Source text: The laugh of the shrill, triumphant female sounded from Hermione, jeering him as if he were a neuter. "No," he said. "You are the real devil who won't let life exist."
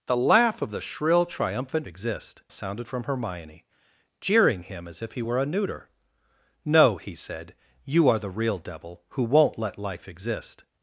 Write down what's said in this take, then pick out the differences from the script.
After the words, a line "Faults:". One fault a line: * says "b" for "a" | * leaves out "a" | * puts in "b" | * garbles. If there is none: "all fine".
The laugh of the shrill, triumphant exist sounded from Hermione, jeering him as if he were a neuter. "No," he said. "You are the real devil who won't let life exist."
Faults:
* says "exist" for "female"